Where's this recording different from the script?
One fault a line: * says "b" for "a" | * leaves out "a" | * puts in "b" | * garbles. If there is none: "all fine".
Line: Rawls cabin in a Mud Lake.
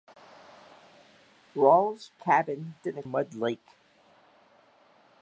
all fine